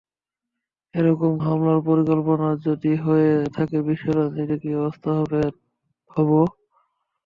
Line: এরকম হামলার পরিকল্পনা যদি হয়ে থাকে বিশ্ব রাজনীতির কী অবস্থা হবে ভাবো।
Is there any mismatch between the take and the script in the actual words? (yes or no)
no